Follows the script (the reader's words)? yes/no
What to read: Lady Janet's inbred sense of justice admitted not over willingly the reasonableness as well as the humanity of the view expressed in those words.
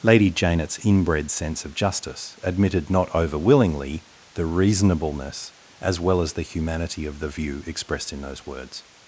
yes